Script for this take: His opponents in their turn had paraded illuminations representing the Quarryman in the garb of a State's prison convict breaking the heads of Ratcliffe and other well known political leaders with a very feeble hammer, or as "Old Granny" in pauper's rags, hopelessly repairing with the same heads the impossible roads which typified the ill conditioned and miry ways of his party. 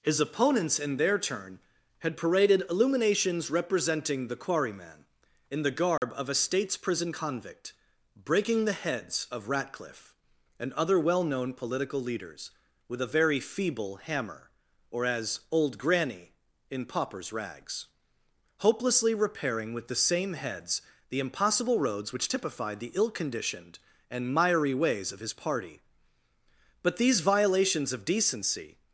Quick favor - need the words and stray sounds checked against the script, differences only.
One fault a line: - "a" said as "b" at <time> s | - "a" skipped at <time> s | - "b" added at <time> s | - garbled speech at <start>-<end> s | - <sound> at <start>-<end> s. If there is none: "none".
- dropout at 6.0-6.0 s
- "But these violations of decency" added at 26.8 s